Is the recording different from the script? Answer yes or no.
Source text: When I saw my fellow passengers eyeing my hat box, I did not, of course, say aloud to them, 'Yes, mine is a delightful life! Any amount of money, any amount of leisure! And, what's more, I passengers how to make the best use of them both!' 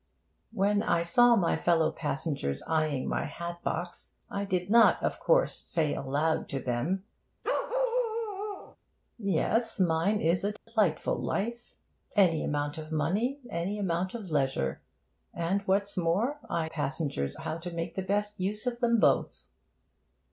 no